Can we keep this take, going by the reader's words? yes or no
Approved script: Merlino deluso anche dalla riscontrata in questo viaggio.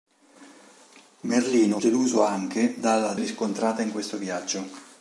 yes